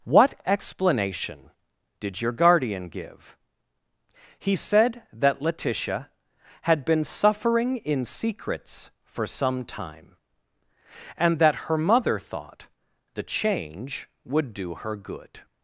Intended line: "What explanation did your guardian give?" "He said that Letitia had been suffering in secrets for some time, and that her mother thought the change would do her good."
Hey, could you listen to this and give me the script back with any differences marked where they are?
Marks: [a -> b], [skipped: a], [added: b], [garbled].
"What explanation did your guardian give?" "He said that Letitia had been suffering in secrets for some time, and that her mother thought the change would do her good."